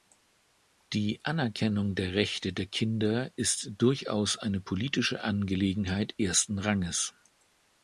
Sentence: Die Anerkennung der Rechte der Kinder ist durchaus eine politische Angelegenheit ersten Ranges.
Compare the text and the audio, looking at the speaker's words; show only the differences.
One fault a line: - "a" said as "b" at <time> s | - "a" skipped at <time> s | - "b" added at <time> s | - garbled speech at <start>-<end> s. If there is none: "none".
none